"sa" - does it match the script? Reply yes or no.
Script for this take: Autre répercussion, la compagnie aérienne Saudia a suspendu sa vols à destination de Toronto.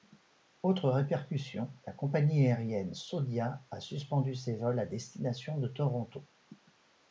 no